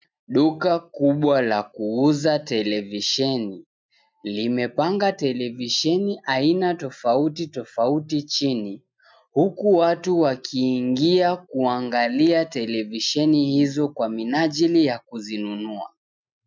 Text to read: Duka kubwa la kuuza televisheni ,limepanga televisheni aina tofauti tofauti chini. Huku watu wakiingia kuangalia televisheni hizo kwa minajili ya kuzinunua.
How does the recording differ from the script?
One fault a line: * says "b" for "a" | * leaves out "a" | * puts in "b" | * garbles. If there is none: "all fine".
all fine